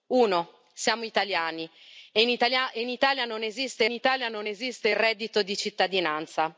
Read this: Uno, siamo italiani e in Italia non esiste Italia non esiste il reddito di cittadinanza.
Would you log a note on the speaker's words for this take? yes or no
no